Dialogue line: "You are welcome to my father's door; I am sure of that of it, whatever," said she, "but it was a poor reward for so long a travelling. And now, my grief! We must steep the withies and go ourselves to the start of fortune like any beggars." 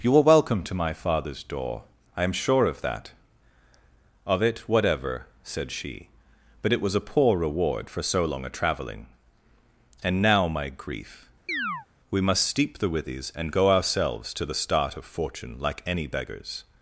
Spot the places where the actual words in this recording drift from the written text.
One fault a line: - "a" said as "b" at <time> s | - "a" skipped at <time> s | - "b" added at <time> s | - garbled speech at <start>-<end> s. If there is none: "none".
none